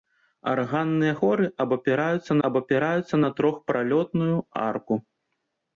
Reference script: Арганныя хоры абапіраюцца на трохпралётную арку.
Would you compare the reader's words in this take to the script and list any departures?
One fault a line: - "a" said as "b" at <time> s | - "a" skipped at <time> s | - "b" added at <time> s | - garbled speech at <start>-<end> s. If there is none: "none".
- "абапіраюцца" added at 2.5 s